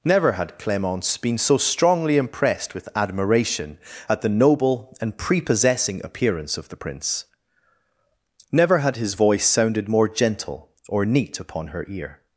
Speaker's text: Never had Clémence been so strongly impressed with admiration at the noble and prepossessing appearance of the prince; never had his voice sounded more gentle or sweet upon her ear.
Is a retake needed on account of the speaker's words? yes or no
yes